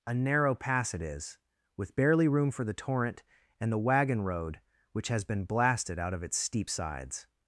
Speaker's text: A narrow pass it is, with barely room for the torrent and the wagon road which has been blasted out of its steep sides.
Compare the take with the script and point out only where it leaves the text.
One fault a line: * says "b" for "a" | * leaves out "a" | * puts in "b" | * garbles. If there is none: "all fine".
all fine